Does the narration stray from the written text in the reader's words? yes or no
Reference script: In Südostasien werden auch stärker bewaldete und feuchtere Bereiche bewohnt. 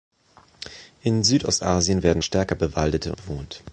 yes